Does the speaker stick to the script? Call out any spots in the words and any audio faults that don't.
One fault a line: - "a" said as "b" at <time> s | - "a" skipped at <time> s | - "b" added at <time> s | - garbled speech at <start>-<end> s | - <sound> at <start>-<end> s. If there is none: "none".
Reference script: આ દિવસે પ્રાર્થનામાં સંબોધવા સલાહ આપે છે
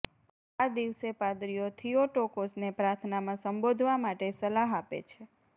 - "પાદરીઓ થિયોટોકોસને" added at 1.2 s
- "માટે" added at 4.0 s